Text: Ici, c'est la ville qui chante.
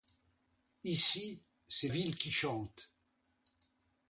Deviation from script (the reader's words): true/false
true